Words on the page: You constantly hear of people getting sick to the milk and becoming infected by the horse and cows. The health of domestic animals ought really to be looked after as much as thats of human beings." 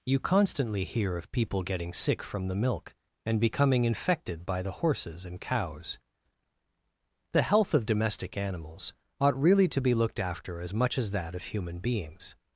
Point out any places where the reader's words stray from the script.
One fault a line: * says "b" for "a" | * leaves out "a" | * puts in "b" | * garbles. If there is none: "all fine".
* says "from" for "to"
* says "horses" for "horse"
* says "that" for "thats"